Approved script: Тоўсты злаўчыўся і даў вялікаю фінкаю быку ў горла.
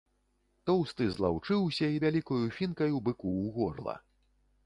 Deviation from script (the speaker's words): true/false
true